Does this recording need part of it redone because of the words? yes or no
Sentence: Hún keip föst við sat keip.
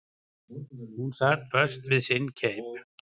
yes